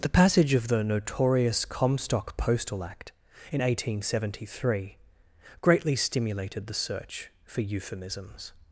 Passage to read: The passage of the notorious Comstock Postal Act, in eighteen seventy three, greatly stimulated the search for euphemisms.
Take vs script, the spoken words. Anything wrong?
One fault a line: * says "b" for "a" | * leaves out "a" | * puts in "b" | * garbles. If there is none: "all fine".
all fine